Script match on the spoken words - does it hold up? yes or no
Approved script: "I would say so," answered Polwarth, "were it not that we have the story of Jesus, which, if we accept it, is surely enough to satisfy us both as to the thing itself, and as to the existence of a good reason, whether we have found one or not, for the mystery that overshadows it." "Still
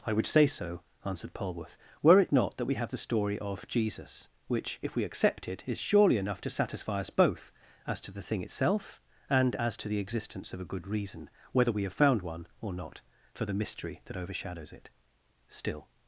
yes